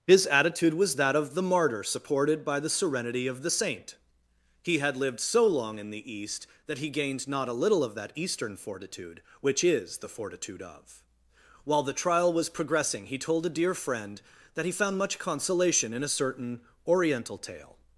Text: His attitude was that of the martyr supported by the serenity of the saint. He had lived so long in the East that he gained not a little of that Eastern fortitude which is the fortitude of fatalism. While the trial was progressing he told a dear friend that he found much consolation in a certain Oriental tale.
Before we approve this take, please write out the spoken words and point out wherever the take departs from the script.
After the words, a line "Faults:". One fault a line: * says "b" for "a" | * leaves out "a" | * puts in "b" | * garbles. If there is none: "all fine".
His attitude was that of the martyr supported by the serenity of the saint. He had lived so long in the East that he gained not a little of that Eastern fortitude which is the fortitude of. While the trial was progressing he told a dear friend that he found much consolation in a certain Oriental tale.
Faults:
* leaves out "fatalism"